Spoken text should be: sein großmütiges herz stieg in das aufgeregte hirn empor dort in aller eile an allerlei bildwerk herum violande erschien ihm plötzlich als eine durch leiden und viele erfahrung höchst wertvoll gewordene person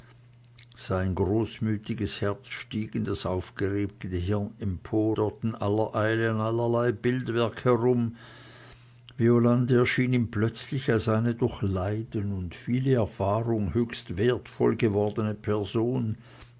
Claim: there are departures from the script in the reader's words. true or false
false